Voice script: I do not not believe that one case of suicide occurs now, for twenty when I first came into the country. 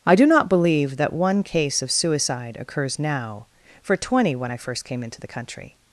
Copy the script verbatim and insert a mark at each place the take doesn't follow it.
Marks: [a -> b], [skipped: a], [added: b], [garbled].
I do not [skipped: not] believe that one case of suicide occurs now, for twenty when I first came into the country.